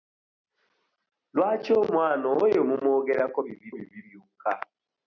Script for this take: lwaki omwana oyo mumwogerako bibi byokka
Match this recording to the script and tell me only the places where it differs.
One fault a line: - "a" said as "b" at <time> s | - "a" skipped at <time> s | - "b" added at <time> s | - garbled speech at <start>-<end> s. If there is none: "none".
- "bibi" added at 3.7 s